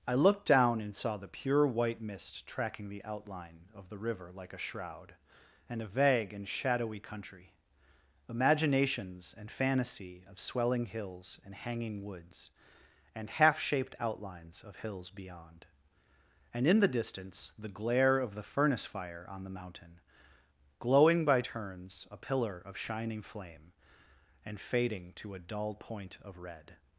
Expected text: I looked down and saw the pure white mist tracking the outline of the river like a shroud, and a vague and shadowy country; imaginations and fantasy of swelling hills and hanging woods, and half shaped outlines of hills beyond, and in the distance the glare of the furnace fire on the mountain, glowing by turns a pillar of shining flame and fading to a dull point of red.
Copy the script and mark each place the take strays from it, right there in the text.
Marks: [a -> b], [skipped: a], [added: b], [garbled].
I looked down and saw the pure white mist tracking the outline of the river like a shroud, and a vague and shadowy country; imaginations and fantasy of swelling hills and hanging woods, and half shaped outlines of hills beyond, and in the distance the glare of the furnace fire on the mountain, glowing by turns a pillar of shining flame and fading to a dull point of red.